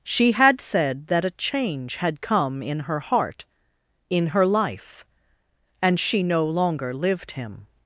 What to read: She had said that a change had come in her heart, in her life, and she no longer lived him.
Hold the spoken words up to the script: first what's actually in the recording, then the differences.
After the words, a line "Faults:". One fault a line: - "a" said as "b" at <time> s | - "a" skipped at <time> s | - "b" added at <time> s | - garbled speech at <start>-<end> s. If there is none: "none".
She had said that a change had come in her heart, in her life, and she no longer lived him.
Faults:
none